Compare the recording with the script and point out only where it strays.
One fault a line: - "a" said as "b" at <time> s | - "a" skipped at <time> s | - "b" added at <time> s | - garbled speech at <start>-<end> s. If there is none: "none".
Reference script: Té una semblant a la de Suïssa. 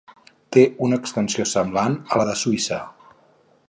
- "extensió" added at 1.0 s